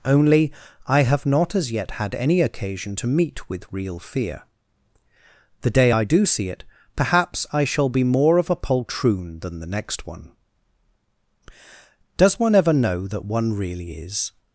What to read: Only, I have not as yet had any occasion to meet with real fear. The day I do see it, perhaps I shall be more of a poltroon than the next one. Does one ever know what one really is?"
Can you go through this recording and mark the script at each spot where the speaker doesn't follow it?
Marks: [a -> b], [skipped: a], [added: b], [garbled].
Only, I have not as yet had any occasion to meet with real fear. The day I do see it, perhaps I shall be more of a poltroon than the next one. Does one ever know [what -> that] one really is?"